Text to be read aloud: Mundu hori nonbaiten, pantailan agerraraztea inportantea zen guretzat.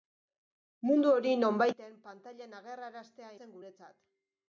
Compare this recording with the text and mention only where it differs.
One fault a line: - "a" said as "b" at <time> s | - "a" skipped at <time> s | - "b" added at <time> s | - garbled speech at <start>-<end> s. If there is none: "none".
- "inportantea" skipped at 3.3 s